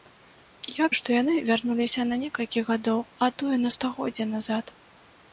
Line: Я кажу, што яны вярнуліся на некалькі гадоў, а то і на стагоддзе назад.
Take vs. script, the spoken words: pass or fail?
fail